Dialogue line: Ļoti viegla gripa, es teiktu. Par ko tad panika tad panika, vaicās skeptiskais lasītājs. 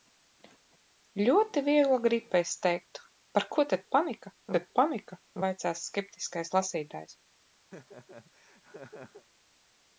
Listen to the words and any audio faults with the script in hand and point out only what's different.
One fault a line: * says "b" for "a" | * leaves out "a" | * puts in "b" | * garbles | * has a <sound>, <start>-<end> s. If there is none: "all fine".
* has a laugh, 7.7-9.2 s